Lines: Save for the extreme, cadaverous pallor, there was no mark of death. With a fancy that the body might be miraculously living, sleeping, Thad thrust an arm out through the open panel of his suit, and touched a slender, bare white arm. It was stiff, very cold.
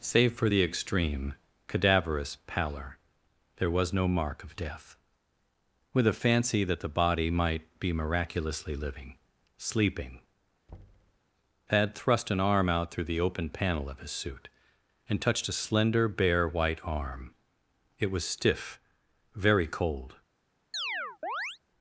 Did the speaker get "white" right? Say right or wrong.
right